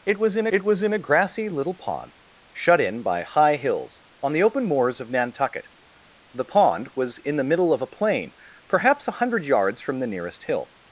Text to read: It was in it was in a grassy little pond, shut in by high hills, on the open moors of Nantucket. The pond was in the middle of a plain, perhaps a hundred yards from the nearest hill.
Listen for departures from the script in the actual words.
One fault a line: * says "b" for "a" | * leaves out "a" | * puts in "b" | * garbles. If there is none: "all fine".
all fine